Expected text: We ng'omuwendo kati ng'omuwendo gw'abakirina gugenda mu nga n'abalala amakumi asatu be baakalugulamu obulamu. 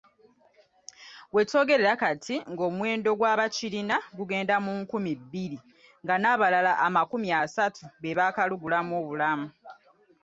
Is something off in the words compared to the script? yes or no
yes